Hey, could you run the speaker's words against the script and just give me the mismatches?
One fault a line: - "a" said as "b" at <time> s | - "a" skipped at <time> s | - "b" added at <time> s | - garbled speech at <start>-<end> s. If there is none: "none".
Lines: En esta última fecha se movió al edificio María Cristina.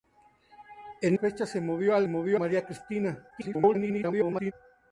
- "esta última" skipped at 1.2 s
- "edificio" said as "movió" at 2.1 s
- garbled speech at 3.3-4.5 s